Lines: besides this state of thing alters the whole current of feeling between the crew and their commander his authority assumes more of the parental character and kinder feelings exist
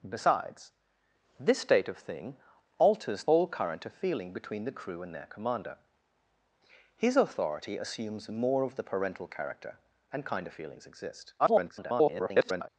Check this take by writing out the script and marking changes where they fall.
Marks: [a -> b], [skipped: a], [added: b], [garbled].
besides this state of thing alters [skipped: the] whole current of feeling between the crew and their commander his authority assumes more of the parental character and kinder feelings exist [garbled]